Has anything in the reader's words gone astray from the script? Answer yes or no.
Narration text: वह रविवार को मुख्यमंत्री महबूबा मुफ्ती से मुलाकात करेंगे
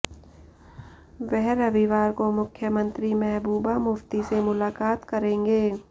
no